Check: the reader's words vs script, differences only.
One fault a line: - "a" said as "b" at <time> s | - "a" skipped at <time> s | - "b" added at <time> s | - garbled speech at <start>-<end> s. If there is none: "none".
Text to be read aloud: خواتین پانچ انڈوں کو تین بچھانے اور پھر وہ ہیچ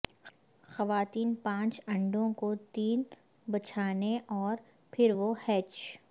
none